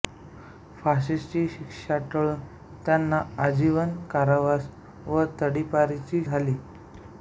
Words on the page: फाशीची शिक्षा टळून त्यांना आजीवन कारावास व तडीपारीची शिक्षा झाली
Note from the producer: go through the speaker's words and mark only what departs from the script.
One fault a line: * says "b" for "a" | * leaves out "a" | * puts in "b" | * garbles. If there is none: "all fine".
* leaves out "शिक्षा"